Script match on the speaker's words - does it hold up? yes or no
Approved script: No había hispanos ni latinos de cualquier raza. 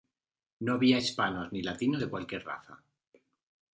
yes